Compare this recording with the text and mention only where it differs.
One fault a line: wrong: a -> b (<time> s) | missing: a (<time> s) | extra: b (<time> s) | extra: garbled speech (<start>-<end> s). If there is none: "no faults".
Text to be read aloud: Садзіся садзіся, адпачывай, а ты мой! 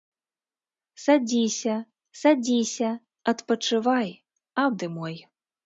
no faults